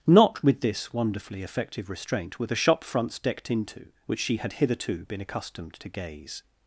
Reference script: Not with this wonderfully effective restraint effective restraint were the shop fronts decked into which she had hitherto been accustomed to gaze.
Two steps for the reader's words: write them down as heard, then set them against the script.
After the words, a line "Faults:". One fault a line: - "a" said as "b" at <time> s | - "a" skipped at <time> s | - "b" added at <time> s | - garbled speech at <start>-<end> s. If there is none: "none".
Not with this wonderfully effective restraint were the shop fronts decked into which she had hitherto been accustomed to gaze.
Faults:
- "effective restraint" skipped at 2.4 s